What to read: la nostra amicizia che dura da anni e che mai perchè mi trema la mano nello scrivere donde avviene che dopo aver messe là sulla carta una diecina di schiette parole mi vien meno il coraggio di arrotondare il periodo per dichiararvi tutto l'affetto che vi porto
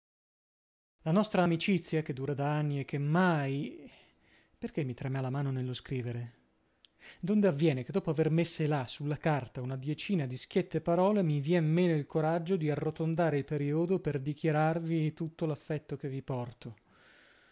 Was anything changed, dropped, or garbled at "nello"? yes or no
no